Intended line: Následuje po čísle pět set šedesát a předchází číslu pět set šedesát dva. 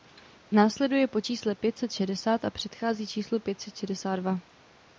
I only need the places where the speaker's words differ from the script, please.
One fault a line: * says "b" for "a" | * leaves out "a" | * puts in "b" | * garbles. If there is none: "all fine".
all fine